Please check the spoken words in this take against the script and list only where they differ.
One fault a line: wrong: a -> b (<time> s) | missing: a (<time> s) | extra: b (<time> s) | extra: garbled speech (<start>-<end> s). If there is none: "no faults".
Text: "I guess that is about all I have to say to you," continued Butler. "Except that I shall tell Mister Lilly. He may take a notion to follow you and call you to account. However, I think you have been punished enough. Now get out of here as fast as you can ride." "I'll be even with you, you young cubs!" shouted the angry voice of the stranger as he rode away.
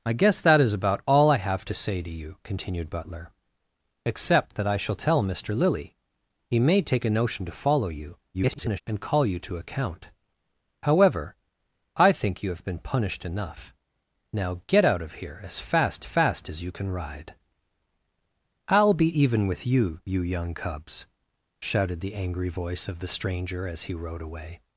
extra: garbled speech (8.3-8.8 s)
extra: fast (16.0 s)